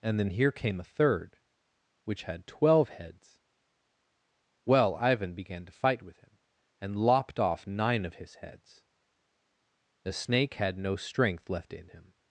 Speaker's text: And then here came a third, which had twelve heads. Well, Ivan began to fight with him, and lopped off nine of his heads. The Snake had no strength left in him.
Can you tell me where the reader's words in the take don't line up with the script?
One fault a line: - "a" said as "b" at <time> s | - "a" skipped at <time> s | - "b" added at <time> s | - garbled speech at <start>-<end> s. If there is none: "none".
none